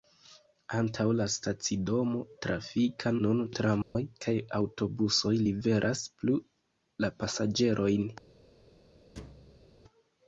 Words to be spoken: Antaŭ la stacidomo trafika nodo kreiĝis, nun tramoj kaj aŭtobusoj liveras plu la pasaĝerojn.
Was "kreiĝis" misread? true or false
true